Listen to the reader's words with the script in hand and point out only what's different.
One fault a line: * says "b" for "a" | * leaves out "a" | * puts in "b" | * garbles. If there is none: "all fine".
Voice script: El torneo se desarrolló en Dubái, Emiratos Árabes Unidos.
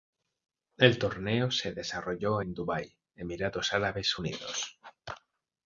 all fine